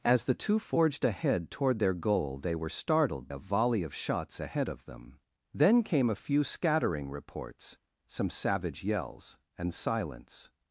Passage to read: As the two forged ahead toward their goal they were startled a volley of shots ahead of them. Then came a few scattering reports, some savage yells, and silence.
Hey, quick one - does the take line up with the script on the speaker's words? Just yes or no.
yes